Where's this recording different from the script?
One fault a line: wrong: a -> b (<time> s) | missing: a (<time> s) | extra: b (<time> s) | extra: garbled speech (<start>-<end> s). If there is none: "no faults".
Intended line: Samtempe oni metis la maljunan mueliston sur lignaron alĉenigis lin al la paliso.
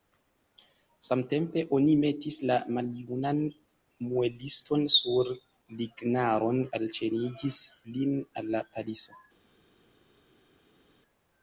no faults